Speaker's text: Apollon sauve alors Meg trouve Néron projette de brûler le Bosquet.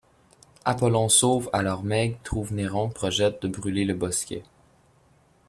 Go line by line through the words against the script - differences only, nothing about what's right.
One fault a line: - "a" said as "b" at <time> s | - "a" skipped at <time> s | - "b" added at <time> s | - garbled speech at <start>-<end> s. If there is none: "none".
none